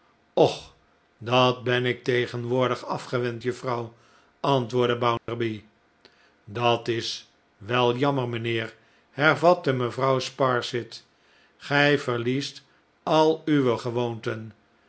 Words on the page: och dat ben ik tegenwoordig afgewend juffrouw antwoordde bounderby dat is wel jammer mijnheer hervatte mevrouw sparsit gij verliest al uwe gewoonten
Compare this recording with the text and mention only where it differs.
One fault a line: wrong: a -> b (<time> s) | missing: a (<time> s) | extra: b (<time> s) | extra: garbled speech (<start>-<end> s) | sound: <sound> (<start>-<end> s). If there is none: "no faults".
sound: dropout (5.2-5.3 s)